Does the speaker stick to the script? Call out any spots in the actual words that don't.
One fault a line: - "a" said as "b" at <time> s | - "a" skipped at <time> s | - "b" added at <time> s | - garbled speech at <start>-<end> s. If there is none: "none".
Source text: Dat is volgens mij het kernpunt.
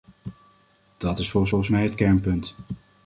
- "volgens" added at 1.5 s